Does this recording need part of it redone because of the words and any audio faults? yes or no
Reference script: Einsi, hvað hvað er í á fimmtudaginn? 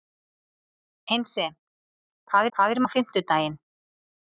no